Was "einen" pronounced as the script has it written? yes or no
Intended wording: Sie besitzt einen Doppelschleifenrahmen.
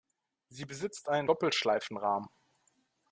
yes